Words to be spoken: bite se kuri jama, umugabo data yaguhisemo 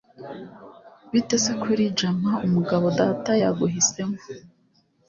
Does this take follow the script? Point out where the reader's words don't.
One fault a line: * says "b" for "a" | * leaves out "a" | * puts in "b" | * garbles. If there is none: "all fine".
all fine